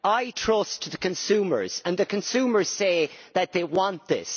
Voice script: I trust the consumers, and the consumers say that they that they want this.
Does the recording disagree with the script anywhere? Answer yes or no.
yes